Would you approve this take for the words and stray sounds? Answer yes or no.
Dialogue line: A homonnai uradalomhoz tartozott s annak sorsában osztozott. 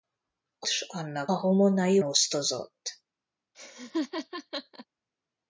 no